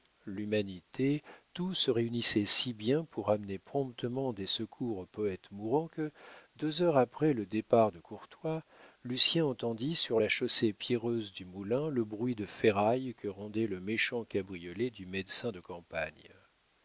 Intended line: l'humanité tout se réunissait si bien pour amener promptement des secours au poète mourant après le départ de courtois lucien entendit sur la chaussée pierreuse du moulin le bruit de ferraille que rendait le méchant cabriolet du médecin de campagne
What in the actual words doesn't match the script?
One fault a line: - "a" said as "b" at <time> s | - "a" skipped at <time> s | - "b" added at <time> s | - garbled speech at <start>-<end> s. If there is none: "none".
- "que deux heures" added at 5.9 s